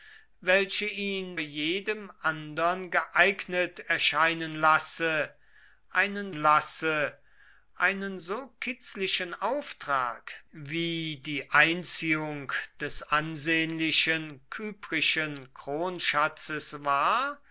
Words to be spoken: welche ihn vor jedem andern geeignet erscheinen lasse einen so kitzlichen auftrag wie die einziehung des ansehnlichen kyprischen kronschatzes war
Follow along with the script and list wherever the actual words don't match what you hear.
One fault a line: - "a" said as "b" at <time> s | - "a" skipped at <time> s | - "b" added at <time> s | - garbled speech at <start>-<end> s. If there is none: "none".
- "vor" skipped at 1.4 s
- "lasse einen" added at 6.3 s